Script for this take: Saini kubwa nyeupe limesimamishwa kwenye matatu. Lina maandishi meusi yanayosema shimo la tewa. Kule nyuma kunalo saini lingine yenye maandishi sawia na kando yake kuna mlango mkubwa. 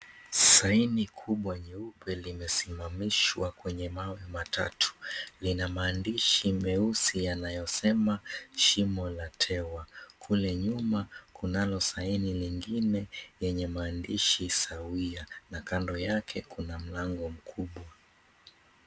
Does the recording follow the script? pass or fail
fail